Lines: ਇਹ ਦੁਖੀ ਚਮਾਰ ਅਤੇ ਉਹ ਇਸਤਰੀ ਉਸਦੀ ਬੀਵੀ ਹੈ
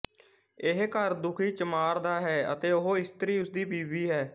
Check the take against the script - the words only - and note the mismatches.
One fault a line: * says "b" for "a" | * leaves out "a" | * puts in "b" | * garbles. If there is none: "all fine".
* puts in "ਘਰ"
* puts in "ਦਾ ਹੈ"